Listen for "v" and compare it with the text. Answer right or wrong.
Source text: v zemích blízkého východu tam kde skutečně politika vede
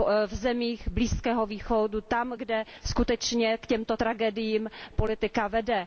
right